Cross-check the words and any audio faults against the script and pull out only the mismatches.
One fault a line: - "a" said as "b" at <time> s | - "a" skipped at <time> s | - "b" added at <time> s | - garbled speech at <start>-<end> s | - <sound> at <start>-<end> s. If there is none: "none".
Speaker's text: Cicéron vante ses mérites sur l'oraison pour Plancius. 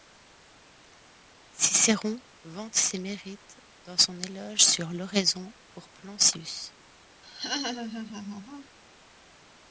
- "dans son éloge" added at 3.8 s
- laugh at 7.2-8.8 s